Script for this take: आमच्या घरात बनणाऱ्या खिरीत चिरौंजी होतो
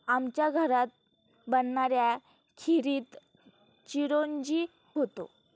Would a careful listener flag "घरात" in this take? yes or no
no